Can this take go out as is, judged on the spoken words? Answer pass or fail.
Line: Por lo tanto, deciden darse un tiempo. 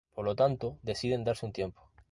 pass